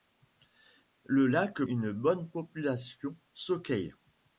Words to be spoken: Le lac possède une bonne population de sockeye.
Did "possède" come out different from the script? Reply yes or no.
yes